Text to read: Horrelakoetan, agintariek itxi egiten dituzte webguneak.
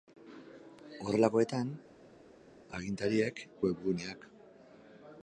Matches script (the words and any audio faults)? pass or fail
fail